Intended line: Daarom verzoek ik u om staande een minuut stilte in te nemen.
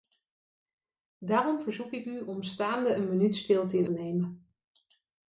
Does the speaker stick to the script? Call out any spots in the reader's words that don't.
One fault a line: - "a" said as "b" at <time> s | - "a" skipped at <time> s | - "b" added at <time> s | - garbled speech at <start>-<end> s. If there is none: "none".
none